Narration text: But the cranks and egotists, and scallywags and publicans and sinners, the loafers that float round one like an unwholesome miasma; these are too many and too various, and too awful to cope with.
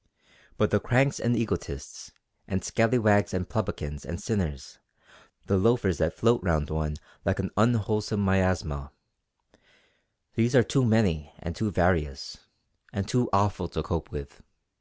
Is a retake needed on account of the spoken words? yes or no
no